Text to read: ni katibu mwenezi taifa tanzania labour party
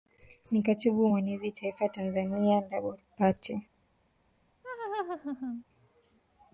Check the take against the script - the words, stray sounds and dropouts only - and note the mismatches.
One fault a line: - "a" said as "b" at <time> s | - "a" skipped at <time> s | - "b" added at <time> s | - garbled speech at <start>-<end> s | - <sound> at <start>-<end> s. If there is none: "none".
- laugh at 4.6-5.6 s